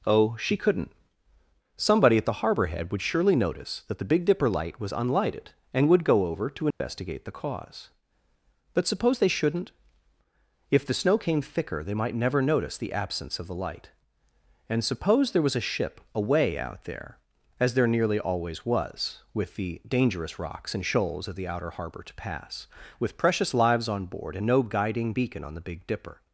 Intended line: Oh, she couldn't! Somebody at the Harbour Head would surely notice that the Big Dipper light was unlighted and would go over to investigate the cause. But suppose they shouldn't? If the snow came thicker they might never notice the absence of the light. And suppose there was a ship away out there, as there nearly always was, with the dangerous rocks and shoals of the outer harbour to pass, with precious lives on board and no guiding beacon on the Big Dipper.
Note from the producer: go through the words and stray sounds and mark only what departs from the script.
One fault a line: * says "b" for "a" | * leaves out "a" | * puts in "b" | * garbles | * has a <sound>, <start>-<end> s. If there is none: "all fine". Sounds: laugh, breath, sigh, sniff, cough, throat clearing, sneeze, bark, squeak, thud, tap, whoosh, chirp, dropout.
* has a dropout, 6.7-6.8 s